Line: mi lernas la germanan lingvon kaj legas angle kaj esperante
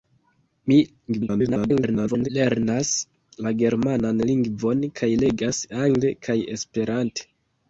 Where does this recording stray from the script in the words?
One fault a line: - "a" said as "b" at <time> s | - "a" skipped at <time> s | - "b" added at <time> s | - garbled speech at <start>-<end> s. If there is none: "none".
- garbled speech at 1.1-2.3 s